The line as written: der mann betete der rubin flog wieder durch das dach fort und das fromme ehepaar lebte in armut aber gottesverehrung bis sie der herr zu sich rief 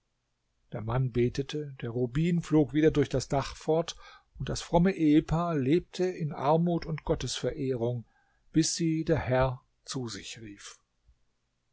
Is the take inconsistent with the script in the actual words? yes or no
yes